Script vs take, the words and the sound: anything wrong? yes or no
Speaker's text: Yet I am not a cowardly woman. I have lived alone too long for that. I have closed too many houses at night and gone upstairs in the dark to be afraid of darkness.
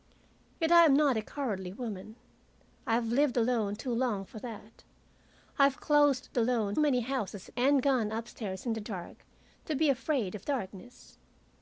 yes